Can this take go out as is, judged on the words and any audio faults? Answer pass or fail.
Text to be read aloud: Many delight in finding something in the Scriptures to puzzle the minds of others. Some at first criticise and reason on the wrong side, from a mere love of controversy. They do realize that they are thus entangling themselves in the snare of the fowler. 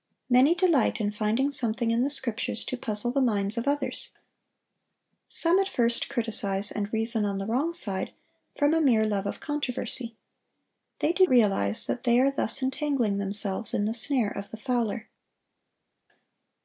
pass